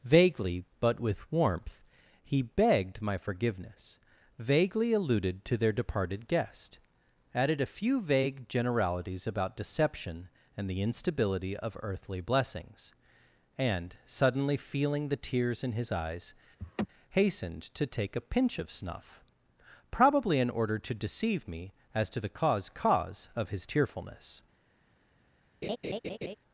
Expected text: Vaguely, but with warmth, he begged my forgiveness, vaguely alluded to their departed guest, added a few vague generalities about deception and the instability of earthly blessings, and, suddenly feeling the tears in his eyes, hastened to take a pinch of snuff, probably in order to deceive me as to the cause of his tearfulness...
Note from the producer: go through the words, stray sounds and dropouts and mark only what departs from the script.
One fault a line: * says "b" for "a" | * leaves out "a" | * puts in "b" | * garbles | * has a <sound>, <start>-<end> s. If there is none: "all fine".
* has a laugh, 16.6-16.9 s
* puts in "cause"
* has a laugh, 25.6-26.4 s